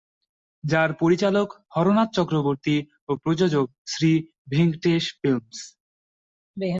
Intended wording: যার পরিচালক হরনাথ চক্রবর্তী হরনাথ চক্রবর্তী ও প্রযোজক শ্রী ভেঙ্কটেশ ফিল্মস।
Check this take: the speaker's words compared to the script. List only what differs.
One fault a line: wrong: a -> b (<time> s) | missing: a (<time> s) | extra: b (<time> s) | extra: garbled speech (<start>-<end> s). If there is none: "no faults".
missing: হরনাথ চক্রবর্তী (2.8 s)